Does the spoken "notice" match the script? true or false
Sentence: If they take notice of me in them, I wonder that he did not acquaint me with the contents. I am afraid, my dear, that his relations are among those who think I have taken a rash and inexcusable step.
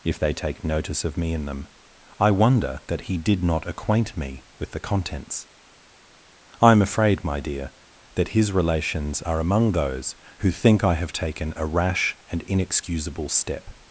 true